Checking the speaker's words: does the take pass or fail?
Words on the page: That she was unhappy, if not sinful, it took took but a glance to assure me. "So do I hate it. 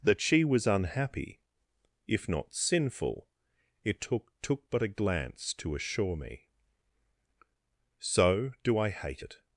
pass